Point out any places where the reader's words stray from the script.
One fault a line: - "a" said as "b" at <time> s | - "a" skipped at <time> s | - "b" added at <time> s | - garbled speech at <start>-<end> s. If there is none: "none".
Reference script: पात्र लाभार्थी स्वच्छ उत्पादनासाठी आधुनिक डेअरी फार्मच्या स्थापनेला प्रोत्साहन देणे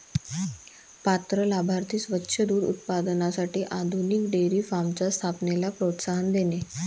- "दूध" added at 2.4 s